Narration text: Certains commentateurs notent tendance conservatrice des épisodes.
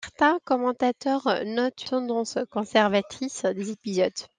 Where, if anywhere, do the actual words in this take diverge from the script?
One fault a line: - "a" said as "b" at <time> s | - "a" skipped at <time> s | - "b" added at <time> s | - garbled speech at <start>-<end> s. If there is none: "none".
none